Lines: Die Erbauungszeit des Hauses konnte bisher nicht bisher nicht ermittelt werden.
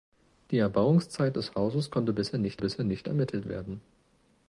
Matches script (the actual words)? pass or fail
pass